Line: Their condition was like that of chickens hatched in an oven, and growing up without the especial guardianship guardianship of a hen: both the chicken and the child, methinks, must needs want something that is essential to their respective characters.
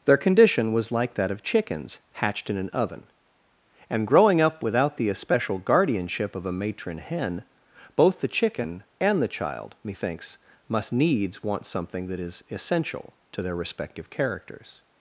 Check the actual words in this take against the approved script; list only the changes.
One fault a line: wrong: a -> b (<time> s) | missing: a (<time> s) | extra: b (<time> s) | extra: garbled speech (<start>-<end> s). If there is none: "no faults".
missing: guardianship (6.3 s)
extra: matron (6.5 s)